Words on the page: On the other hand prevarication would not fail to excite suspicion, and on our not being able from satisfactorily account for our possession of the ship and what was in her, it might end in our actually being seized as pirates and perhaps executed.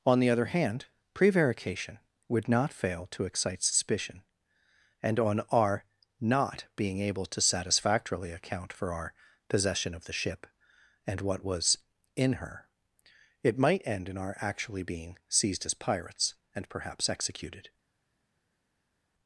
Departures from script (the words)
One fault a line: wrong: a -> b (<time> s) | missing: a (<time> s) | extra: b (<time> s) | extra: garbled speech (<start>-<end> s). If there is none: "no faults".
wrong: from -> to (7.2 s)